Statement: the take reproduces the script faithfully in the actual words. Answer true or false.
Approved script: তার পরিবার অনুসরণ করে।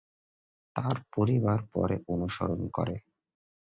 false